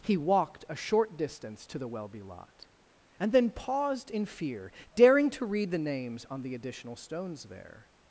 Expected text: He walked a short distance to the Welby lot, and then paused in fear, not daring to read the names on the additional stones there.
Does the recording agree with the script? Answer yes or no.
no